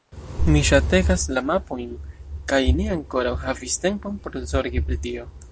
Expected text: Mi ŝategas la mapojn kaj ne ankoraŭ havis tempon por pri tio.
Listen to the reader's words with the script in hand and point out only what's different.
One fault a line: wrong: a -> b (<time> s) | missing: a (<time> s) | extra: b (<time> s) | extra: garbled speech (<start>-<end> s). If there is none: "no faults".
extra: zorgi (4.6 s)